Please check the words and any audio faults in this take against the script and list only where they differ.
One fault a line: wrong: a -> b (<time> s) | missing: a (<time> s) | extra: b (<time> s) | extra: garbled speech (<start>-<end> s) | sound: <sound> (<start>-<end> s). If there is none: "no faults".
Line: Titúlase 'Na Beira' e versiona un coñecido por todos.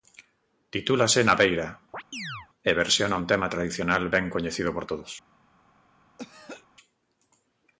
sound: chirp (1.9-2.5 s)
extra: tema tradicional ben (3.3 s)
sound: throat clearing (6.2-6.7 s)